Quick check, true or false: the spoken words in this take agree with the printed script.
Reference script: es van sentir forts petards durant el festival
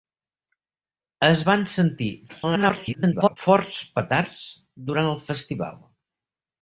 false